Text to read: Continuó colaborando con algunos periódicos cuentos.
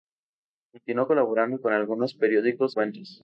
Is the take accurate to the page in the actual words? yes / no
yes